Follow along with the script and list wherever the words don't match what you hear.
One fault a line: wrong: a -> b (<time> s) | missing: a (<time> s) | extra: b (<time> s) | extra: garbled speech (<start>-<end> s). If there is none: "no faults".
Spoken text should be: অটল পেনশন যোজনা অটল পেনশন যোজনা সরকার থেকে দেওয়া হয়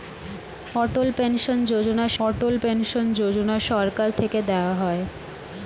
no faults